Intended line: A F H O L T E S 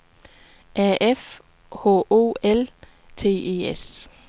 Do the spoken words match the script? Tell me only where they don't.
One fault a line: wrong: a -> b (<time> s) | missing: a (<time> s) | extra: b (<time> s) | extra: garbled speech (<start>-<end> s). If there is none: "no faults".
no faults